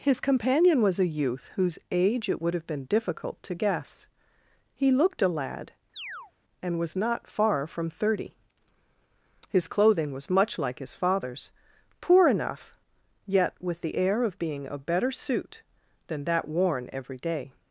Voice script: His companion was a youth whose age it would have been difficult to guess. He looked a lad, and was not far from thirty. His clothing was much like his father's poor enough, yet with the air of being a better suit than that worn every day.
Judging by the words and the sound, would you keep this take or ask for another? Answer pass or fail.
fail